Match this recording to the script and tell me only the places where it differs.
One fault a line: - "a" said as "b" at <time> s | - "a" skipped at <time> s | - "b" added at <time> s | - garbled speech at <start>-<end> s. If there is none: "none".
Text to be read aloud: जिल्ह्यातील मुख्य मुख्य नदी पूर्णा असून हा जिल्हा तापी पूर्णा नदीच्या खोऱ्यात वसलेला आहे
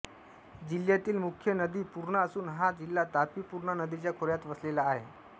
- "मुख्य" skipped at 1.5 s